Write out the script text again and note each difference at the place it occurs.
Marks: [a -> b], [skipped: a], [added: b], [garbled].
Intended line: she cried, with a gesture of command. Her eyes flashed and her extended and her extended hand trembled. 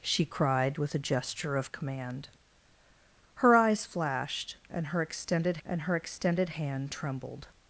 she cried, with a gesture of command. Her eyes flashed and her extended and her extended hand trembled.